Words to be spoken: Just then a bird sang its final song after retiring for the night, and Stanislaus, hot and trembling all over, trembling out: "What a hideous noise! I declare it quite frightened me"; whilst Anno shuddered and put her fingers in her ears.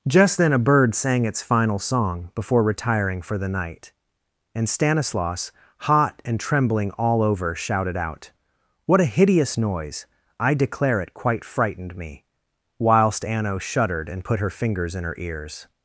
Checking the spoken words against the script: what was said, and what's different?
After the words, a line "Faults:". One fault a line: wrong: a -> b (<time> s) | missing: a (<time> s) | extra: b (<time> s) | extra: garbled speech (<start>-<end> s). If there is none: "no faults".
Just then a bird sang its final song before retiring for the night, and Stanislaus, hot and trembling all over, shouted out: "What a hideous noise! I declare it quite frightened me"; whilst Anno shuddered and put her fingers in her ears.
Faults:
wrong: after -> before (2.3 s)
wrong: trembling -> shouted (7.5 s)